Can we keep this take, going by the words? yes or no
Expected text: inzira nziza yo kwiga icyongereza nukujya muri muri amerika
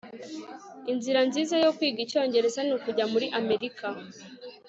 no